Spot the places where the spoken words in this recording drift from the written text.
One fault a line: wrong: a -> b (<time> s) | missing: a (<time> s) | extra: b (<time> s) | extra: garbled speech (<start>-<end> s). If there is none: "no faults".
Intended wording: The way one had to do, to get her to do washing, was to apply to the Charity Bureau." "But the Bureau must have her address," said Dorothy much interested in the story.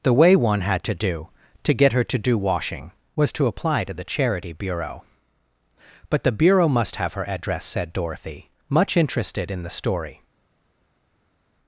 no faults